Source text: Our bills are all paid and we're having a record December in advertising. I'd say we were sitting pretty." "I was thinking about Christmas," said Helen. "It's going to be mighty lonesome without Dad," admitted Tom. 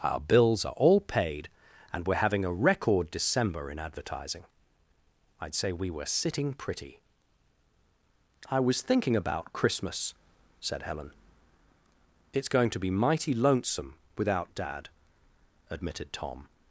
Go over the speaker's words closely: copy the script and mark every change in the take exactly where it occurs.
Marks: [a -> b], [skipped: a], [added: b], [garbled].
Our bills are all paid and we're having a record December in advertising. I'd say we were sitting pretty." "I was thinking about Christmas," said Helen. "It's going to be mighty lonesome without Dad," admitted Tom.